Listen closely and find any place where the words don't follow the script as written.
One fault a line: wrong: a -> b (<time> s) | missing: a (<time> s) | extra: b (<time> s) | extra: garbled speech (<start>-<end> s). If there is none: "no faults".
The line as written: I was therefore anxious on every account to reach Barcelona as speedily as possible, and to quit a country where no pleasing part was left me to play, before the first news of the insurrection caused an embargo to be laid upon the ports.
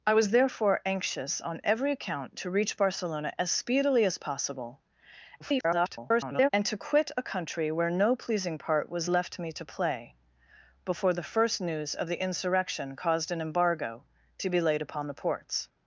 extra: garbled speech (5.4-6.5 s)